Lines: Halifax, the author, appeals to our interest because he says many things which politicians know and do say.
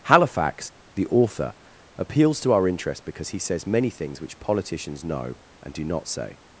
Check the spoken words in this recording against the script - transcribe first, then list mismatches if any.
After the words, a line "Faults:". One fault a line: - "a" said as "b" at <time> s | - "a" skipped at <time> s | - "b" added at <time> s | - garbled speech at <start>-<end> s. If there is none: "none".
Halifax, the author, appeals to our interest because he says many things which politicians know and do not say.
Faults:
- "not" added at 5.8 s